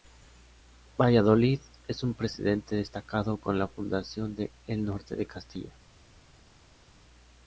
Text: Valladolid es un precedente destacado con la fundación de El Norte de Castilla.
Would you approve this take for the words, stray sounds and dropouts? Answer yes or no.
yes